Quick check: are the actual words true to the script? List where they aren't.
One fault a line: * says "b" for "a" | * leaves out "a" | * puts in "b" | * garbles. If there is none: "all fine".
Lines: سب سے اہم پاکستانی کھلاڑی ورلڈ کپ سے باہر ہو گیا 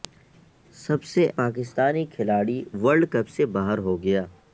* leaves out "اہم"